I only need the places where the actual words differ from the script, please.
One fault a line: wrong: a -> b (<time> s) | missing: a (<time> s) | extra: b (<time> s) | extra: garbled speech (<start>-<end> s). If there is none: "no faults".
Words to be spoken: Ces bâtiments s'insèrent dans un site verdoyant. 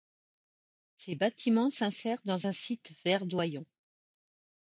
no faults